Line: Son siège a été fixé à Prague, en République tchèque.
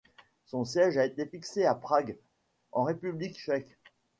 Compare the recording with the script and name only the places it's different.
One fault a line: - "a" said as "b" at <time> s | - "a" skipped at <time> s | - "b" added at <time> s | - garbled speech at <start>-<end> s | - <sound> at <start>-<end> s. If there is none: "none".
none